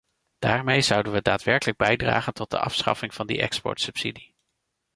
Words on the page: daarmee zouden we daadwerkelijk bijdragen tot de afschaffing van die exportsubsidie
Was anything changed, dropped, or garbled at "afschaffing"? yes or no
no